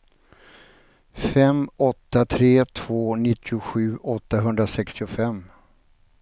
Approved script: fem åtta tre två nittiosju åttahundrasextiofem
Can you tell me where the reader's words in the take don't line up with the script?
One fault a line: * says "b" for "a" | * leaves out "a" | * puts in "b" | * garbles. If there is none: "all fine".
all fine